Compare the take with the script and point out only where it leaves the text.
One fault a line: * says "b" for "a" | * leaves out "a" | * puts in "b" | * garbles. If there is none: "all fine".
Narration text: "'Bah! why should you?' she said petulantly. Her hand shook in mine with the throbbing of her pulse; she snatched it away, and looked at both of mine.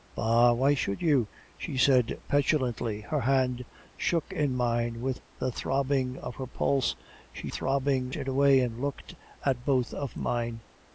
* says "throbbing" for "snatched"